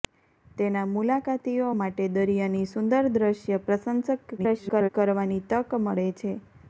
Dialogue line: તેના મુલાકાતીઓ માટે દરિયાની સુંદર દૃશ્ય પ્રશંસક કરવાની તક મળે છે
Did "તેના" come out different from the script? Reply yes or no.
no